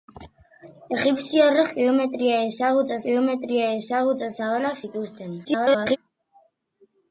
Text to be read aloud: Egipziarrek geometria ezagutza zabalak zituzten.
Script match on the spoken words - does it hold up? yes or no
no